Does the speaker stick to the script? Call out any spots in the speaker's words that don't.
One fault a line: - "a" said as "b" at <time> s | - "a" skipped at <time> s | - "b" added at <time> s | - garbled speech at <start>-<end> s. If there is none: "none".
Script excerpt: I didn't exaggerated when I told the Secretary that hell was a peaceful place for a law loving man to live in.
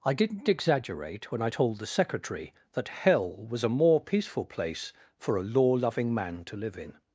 - "exaggerated" said as "exaggerate" at 0.5 s
- "more" added at 3.7 s